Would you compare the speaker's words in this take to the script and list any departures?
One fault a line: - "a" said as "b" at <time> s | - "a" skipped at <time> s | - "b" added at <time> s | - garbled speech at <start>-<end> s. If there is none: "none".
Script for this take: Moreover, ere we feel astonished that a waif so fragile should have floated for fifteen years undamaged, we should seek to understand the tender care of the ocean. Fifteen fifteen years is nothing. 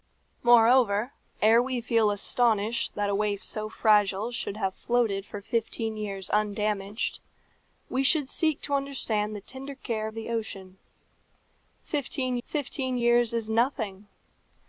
none